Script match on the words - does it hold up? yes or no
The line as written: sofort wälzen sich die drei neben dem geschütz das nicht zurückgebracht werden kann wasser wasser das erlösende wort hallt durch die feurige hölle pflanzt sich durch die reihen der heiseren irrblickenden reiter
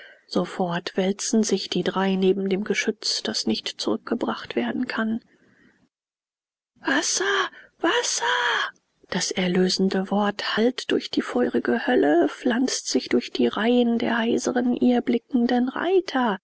yes